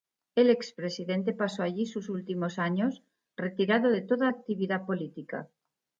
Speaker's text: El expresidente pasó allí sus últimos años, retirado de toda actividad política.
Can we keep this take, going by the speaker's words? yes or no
yes